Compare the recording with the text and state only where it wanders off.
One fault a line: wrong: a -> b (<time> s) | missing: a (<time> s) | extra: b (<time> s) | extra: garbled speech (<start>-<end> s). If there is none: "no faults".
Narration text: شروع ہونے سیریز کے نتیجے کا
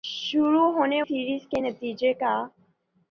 no faults